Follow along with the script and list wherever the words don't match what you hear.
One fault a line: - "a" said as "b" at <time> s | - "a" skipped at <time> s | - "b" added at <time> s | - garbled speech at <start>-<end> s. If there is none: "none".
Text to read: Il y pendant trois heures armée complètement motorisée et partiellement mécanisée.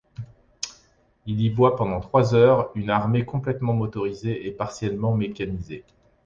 - "voit" added at 1.5 s
- "une" added at 2.8 s